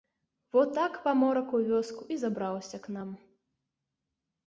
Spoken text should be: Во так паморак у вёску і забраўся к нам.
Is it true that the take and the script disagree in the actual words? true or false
false